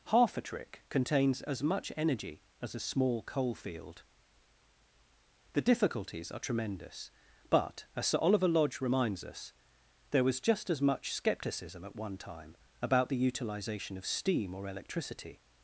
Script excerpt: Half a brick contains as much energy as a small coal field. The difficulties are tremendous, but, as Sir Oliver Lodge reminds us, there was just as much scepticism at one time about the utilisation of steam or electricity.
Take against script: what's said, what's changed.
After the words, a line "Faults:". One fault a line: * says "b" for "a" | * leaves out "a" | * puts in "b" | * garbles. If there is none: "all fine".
Half a trick contains as much energy as a small coal field. The difficulties are tremendous, but, as Sir Oliver Lodge reminds us, there was just as much scepticism at one time about the utilisation of steam or electricity.
Faults:
* says "trick" for "brick"